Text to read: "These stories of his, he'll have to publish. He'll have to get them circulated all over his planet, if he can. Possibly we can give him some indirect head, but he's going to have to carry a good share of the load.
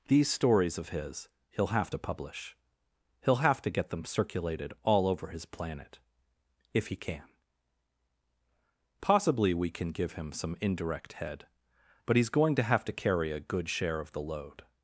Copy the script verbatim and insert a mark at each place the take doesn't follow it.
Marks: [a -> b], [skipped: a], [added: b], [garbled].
"These stories of his, he'll have to publish. He'll have to get them circulated all over his planet, if he can. Possibly we can give him some indirect head, but he's going to have to carry a good share of the load.